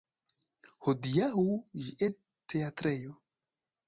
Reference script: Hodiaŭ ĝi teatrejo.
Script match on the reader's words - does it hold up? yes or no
yes